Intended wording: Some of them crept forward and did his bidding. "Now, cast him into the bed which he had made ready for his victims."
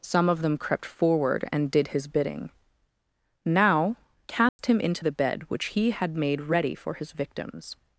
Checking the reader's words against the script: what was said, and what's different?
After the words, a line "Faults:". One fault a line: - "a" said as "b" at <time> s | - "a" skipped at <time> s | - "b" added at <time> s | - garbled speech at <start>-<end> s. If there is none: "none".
Some of them crept forward and did his bidding. "Now, cast him into the bed which he had made ready for his victims."
Faults:
none